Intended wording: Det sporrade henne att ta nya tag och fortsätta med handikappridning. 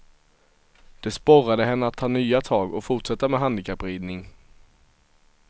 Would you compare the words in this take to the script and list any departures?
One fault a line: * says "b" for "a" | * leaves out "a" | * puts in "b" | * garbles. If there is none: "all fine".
all fine